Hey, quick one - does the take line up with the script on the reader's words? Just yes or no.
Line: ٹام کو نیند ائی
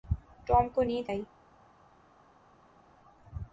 yes